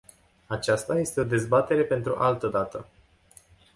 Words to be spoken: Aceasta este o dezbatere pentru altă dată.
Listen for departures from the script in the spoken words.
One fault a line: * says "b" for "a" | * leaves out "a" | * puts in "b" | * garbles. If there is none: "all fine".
all fine